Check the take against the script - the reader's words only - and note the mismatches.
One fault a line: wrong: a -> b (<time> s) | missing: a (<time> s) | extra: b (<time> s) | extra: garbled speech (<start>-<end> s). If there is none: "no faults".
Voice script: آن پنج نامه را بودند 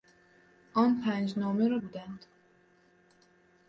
no faults